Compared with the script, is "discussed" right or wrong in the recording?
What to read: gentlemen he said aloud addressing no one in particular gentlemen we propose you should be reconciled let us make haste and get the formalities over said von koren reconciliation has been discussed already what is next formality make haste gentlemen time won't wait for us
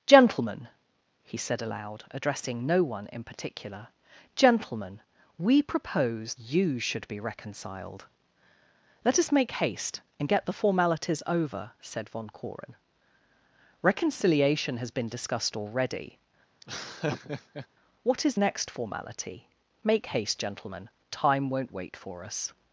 right